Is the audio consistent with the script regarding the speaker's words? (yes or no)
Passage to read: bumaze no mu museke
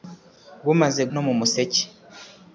yes